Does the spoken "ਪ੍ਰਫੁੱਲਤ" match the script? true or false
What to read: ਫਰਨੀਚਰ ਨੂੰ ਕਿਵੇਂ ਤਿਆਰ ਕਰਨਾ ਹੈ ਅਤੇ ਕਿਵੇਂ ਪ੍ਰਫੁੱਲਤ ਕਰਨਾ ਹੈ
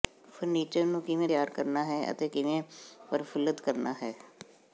true